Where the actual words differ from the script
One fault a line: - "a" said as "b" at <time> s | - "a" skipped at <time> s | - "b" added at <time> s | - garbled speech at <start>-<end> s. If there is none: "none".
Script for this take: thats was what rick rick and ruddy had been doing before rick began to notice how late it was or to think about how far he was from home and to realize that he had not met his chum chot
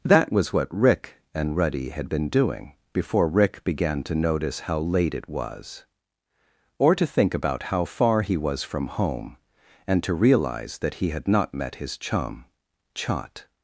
- "thats" said as "that" at 0.0 s
- "rick" skipped at 1.2 s